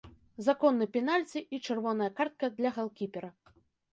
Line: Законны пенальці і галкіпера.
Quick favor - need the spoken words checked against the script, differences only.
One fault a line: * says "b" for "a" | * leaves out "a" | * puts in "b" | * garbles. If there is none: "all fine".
* puts in "чырвоная картка для"